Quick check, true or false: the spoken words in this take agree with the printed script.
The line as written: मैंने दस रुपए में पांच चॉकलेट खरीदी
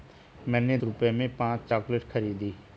false